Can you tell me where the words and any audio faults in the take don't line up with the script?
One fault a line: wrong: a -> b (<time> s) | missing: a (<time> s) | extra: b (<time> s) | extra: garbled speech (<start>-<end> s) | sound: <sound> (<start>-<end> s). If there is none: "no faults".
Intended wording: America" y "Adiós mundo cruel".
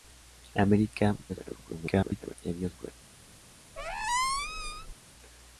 extra: garbled speech (1.3-2.4 s)
missing: mundo (2.8 s)
sound: squeak (3.8-4.9 s)